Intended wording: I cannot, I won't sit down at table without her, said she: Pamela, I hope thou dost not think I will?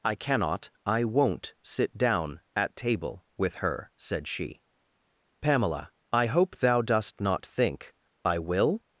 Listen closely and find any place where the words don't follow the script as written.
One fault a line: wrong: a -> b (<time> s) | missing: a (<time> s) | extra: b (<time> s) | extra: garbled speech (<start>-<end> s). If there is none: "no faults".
wrong: without -> with (3.4 s)